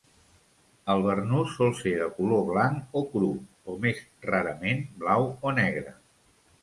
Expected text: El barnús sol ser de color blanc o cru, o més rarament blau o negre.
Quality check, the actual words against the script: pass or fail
pass